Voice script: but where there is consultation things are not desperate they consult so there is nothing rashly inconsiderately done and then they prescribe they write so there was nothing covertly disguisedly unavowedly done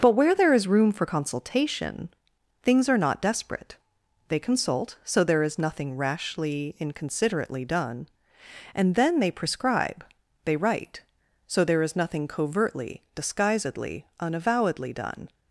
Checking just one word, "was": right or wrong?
wrong